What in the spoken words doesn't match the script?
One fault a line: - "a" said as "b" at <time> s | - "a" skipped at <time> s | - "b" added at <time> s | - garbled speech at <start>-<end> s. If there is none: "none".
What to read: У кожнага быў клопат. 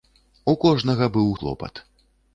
none